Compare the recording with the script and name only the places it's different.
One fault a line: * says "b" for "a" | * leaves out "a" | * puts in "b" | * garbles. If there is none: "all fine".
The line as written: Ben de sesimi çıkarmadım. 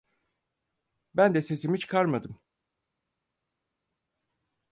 all fine